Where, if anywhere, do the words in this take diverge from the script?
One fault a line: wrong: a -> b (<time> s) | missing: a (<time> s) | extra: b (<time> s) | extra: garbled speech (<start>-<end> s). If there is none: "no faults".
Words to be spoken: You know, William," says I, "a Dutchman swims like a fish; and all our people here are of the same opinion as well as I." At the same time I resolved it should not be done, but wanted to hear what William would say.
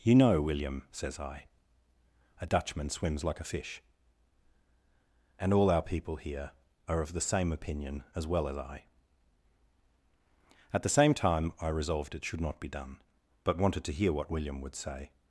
no faults